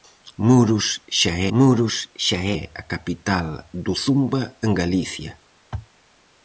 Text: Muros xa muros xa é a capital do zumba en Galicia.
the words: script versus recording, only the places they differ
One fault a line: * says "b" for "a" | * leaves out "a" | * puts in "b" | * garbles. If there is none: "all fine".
all fine